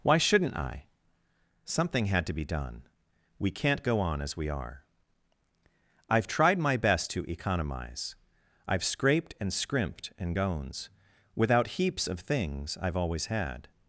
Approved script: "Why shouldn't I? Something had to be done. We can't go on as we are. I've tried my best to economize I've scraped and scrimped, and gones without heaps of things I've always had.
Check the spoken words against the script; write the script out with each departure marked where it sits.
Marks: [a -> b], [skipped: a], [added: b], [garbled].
"Why shouldn't I? Something had to be done. We can't go on as we are. I've tried my best to economize I've scraped and scrimped, and gones without heaps of things I've always had.